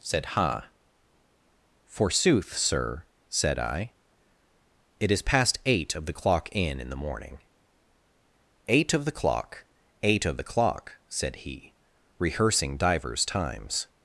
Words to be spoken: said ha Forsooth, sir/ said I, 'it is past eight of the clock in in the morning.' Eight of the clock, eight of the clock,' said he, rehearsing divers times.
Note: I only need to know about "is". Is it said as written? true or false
true